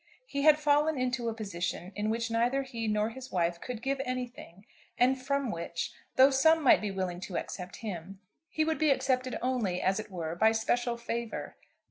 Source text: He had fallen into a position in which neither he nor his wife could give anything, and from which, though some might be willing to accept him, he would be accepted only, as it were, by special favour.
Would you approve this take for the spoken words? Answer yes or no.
yes